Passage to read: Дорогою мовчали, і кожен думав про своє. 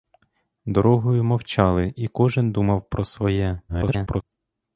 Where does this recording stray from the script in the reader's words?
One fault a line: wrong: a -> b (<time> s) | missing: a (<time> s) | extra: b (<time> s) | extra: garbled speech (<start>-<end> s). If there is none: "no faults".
extra: garbled speech (3.7-4.2 s)